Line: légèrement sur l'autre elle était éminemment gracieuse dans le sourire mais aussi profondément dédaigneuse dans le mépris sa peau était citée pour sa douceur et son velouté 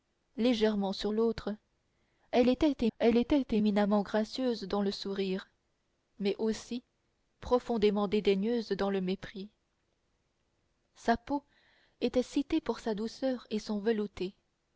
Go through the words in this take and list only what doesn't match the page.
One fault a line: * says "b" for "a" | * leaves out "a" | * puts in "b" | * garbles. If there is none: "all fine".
* puts in "elle était"